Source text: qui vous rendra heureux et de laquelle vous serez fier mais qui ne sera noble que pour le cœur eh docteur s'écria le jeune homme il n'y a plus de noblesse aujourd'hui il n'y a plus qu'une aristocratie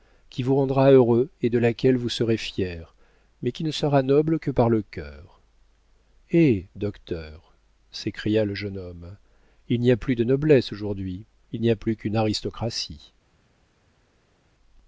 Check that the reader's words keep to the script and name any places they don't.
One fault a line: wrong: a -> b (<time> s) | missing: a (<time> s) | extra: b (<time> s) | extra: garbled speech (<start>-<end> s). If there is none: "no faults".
wrong: pour -> par (4.5 s)